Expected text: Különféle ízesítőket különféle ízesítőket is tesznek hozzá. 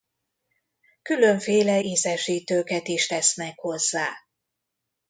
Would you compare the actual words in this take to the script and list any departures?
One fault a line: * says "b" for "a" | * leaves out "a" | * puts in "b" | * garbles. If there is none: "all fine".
* leaves out "különféle ízesítőket"